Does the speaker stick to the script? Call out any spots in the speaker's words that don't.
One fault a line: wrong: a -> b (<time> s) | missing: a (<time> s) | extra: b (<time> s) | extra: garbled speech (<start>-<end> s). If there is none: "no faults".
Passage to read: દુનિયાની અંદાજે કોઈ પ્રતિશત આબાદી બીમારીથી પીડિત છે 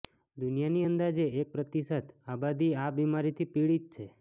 wrong: કોઈ -> એક (1.4 s)
extra: આ (2.8 s)